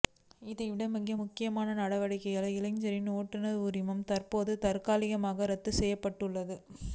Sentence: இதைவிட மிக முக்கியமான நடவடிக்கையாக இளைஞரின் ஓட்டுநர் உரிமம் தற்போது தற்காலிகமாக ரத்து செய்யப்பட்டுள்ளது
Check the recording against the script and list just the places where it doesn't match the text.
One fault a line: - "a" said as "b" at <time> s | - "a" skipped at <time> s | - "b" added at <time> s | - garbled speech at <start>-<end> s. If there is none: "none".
none